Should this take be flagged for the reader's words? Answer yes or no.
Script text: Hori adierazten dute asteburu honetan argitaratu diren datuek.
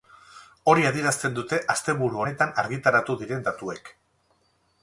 no